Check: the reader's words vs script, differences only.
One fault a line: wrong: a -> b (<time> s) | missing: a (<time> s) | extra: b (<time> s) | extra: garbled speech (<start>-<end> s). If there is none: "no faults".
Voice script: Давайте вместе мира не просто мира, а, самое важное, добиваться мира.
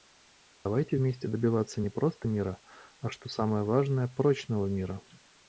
wrong: мира -> добиваться (1.3 s)
extra: что (3.1 s)
wrong: добиваться -> прочного (4.1 s)